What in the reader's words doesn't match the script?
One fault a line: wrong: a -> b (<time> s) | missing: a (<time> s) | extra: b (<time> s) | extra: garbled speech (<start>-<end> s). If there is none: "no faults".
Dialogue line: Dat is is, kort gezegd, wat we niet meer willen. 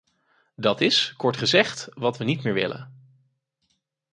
missing: is (1.1 s)